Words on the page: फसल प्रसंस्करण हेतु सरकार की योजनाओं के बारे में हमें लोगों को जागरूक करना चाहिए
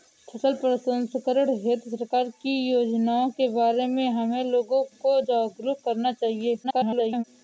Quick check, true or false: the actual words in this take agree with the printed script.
false